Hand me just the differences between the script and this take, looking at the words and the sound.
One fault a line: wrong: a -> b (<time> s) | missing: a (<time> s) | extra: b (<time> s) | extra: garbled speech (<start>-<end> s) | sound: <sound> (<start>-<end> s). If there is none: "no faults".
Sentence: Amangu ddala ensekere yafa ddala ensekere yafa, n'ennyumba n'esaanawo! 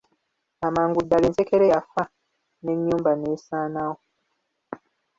missing: ddala ensekere yafa (2.0 s)